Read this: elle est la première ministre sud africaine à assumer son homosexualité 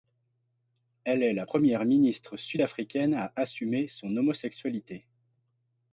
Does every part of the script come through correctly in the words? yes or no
yes